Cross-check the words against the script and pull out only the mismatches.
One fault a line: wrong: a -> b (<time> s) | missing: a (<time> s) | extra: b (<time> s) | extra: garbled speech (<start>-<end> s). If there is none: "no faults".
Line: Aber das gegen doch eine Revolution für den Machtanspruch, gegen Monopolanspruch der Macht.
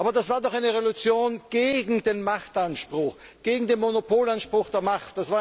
wrong: gegen -> war (0.3 s)
wrong: für -> gegen (1.5 s)
extra: den (3.7 s)